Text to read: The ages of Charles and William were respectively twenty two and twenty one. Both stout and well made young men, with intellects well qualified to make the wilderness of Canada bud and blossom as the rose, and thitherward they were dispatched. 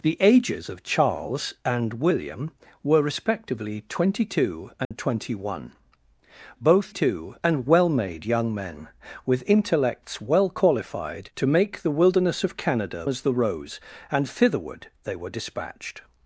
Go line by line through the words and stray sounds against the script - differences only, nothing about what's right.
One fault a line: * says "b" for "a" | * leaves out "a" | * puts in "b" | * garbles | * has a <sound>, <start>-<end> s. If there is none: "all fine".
* has a dropout, 4.8-4.9 s
* says "two" for "stout"
* leaves out "bud and blossom"